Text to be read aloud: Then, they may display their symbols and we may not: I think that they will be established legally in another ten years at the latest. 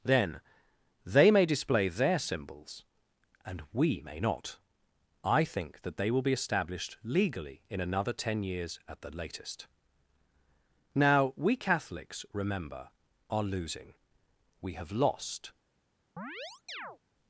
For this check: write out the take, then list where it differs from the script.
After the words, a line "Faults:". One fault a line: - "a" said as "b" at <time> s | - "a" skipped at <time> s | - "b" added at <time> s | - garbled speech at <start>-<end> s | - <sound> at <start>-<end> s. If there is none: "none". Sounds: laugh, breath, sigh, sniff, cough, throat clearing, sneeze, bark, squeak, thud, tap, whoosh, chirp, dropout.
Then, they may display their symbols and we may not: I think that they will be established legally in another ten years at the latest. "Now, we Catholics, remember, are losing; we have lost
Faults:
- "Now we Catholics remember are losing we have lost" added at 10.9 s
- chirp at 16.2-17.0 s